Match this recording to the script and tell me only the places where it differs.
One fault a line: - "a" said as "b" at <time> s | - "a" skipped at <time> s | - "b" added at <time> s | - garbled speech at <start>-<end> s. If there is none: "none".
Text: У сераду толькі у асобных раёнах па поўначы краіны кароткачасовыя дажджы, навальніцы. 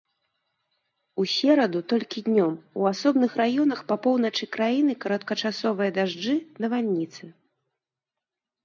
- "днём" added at 2.3 s